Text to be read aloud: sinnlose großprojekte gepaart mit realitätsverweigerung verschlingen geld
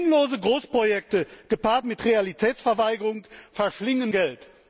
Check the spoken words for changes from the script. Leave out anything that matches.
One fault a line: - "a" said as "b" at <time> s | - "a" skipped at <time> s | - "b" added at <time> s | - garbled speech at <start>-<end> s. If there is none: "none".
none